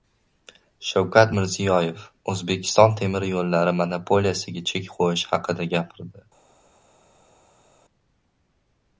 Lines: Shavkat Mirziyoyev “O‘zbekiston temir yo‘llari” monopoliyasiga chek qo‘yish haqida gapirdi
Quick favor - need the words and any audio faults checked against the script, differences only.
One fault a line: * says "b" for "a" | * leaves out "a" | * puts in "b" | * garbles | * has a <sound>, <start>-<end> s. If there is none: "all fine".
all fine